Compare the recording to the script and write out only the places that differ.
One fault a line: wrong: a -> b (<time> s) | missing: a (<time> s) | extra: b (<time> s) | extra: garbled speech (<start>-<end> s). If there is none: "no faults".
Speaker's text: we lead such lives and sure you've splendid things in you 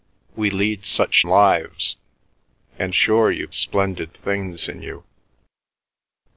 no faults